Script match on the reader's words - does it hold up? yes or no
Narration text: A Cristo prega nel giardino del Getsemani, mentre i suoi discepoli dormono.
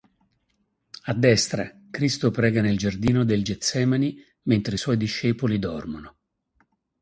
no